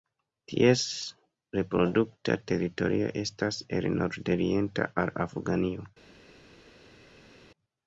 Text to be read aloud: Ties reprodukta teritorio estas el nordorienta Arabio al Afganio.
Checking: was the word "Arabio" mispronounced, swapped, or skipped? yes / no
yes